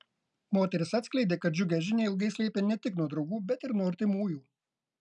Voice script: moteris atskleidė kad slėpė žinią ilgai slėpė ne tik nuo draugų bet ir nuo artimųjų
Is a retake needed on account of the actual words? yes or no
yes